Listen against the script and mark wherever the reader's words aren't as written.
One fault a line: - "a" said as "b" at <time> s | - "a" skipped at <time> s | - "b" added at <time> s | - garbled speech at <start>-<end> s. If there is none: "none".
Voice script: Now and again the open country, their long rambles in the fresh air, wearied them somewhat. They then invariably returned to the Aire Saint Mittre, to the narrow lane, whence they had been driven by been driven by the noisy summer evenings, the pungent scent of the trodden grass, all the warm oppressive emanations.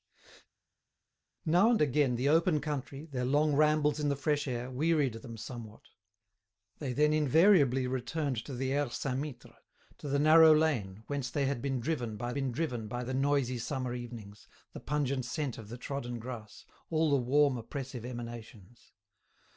none